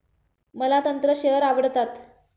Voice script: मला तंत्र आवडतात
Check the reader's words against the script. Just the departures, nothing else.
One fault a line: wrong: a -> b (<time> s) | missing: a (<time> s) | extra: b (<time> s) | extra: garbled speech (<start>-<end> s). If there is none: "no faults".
extra: शेअर (1.2 s)